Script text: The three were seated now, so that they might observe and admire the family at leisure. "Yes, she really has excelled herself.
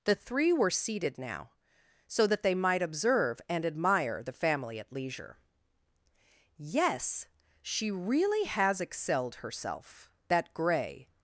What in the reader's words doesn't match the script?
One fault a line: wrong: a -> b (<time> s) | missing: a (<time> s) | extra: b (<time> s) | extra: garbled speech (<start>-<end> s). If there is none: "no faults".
extra: That grey (10.3 s)